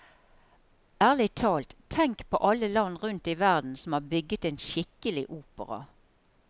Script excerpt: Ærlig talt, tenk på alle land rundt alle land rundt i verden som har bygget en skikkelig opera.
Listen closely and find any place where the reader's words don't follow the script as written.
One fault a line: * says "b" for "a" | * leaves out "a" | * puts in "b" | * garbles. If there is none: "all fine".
* leaves out "alle land rundt"